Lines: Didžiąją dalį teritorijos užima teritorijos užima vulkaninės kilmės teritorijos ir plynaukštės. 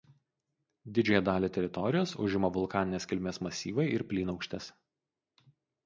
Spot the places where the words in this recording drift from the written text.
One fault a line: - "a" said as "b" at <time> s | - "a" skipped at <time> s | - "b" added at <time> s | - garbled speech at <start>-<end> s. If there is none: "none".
- "teritorijos užima" skipped at 2.5 s
- "teritorijos" said as "masyvai" at 3.5 s